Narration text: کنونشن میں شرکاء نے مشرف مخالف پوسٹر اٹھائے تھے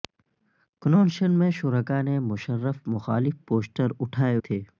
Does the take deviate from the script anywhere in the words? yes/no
no